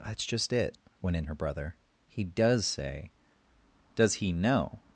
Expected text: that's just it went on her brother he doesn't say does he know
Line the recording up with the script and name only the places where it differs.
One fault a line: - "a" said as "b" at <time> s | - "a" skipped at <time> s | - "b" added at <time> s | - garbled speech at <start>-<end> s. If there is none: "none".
- "on" said as "in" at 1.2 s
- "doesn't" said as "does" at 2.2 s